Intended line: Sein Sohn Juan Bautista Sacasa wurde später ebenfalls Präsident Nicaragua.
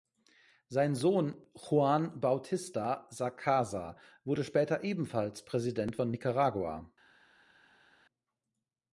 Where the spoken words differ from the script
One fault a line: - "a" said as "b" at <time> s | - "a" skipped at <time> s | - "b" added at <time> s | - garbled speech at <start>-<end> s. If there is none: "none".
- "von" added at 5.9 s